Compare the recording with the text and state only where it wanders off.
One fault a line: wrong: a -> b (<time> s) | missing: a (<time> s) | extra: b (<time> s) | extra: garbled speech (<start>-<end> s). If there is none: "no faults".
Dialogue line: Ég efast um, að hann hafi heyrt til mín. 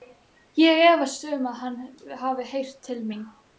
no faults